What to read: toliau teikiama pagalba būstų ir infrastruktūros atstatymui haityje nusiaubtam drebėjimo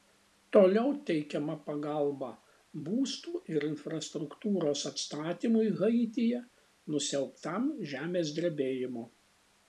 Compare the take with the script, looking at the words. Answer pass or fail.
fail